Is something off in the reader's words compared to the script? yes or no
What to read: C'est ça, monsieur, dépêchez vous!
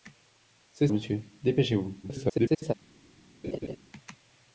yes